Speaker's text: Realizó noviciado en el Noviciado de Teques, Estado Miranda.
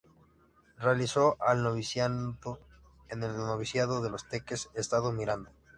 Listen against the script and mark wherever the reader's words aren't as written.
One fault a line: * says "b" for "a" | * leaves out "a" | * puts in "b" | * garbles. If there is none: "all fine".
* puts in "el"
* puts in "Los"